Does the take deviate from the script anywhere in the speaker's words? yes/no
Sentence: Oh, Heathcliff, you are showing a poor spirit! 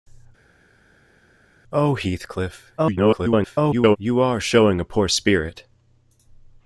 yes